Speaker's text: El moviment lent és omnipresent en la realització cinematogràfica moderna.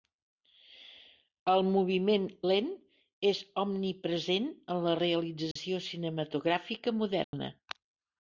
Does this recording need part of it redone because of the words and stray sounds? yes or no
yes